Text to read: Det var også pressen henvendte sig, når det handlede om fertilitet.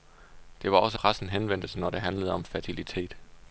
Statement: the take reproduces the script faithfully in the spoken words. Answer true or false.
true